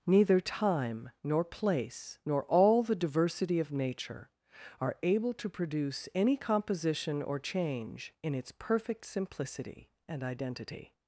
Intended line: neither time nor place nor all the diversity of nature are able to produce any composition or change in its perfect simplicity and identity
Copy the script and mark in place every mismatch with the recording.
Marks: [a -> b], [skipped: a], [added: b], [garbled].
neither time nor place nor all the diversity of nature are able to produce any composition or change in its perfect simplicity and identity